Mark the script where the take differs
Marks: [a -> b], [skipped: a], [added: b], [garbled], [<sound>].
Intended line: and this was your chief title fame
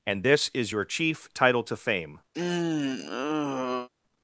and this [was -> is] your chief title [added: to] fame [sigh]